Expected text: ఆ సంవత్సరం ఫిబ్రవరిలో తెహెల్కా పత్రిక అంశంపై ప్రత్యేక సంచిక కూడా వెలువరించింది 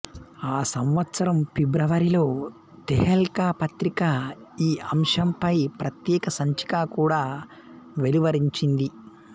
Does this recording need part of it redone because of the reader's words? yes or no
yes